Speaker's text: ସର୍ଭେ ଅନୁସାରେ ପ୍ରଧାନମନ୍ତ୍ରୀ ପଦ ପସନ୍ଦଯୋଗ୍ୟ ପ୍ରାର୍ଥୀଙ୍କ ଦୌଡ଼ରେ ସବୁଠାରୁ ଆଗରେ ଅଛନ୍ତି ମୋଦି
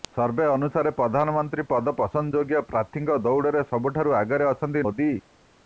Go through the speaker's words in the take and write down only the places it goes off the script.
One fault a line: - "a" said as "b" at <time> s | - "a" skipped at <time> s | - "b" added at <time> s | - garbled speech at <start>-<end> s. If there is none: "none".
none